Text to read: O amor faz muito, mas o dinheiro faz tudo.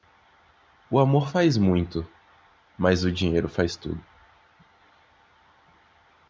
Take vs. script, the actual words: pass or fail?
pass